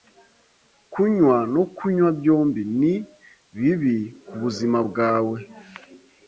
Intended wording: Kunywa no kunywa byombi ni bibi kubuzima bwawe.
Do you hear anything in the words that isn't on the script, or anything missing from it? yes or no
no